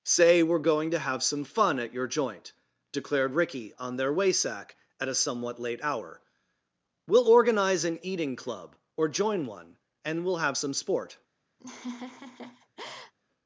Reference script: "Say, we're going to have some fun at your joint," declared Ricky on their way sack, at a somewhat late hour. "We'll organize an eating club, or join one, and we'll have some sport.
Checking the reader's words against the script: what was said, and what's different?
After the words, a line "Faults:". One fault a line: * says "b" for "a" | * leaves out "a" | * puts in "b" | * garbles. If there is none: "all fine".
"Say, we're going to have some fun at your joint," declared Ricky on their way sack, at a somewhat late hour. "We'll organize an eating club, or join one, and we'll have some sport.
Faults:
all fine